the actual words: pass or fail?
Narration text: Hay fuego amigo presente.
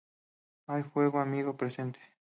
pass